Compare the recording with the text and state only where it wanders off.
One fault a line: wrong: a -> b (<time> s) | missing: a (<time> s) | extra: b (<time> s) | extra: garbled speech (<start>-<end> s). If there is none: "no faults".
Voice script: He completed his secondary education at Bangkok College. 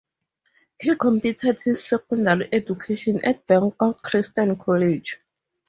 extra: Christian (4.0 s)